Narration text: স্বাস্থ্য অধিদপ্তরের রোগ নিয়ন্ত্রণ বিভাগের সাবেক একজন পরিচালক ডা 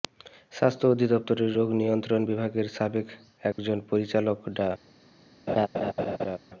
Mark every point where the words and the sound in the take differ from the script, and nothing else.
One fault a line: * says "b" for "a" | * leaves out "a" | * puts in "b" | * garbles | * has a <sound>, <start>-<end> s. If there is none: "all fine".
* has a dropout, 3.5-3.6 s
* has a laugh, 5.5-6.4 s